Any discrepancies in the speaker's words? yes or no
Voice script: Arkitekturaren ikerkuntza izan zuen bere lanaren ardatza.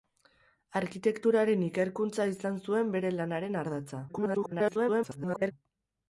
yes